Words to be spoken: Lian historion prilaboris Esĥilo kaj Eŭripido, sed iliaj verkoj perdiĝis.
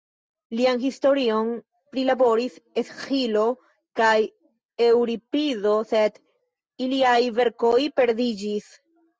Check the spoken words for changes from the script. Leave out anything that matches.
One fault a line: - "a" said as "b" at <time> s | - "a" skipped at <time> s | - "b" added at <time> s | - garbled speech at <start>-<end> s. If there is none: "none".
none